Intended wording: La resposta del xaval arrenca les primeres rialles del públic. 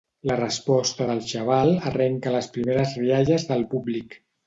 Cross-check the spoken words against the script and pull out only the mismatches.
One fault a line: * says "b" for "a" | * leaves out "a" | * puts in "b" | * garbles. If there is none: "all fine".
all fine